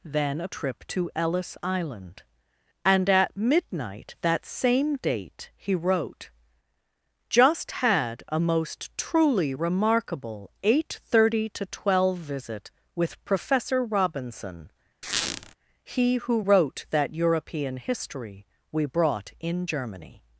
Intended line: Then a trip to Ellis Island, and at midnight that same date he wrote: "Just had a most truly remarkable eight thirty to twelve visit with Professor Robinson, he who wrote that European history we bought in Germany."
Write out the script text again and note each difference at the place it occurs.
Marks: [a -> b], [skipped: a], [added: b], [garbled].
Then a trip to Ellis Island, and at midnight that same date he wrote: "Just had a most truly remarkable eight thirty to twelve visit with Professor Robinson, he who wrote that European history we [bought -> brought] in Germany."